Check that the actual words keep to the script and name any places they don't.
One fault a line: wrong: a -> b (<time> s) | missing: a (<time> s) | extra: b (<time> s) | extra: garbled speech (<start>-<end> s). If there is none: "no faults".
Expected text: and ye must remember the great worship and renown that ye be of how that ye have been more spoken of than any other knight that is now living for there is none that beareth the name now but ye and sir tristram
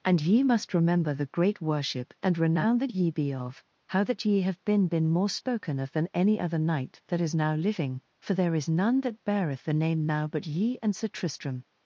extra: been (4.9 s)